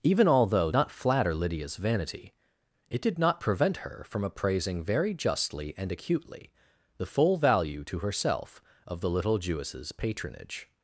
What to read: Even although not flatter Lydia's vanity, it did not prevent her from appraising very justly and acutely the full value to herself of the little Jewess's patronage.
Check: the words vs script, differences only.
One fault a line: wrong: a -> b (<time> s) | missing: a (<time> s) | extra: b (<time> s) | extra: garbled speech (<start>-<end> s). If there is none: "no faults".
no faults